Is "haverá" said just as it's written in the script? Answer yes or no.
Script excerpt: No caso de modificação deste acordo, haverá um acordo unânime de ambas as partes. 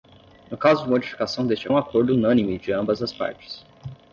no